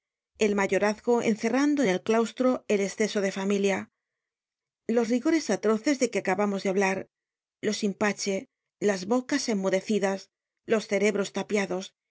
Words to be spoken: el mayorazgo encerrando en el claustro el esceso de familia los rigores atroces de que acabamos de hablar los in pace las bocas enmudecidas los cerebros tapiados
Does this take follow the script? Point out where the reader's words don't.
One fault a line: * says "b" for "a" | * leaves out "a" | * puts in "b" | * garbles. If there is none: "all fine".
all fine